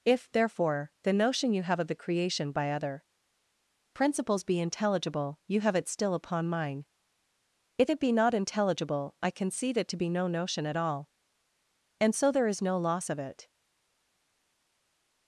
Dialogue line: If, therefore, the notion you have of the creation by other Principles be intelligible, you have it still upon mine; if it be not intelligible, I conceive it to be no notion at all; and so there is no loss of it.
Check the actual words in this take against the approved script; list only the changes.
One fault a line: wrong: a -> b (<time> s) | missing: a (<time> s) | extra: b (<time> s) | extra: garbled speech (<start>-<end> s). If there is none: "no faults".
wrong: conceive -> concede (9.3 s)